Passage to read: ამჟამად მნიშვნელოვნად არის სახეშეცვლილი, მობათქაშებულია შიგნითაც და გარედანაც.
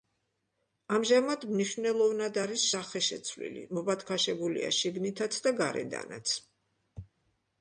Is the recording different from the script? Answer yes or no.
no